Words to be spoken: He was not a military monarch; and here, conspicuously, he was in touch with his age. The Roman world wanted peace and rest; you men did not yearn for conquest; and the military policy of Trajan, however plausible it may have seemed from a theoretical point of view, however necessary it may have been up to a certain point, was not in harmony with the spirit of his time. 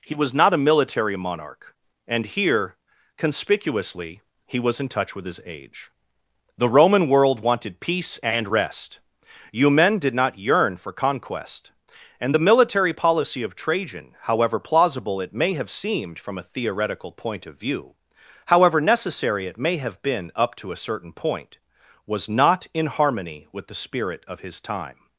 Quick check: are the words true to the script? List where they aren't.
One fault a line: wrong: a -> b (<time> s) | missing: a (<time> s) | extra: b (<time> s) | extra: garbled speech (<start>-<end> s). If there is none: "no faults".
no faults